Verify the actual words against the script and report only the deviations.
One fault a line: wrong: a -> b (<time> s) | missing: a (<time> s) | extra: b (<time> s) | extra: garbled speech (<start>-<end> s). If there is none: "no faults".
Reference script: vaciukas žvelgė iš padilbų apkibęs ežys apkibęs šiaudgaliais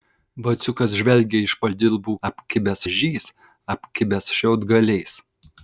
no faults